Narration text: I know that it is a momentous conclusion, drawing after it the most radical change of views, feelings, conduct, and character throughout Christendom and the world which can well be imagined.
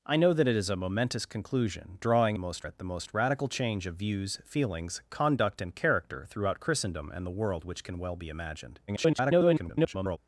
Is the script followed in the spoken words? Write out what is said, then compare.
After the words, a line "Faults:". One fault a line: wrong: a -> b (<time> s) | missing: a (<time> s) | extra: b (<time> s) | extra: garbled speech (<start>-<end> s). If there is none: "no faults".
I know that it is a momentous conclusion, drawing most it the most radical change of views, feelings, conduct, and character throughout Christendom and the world which can well be imagined. [garbled]
Faults:
wrong: after -> most (2.4 s)
extra: garbled speech (8.9-10.2 s)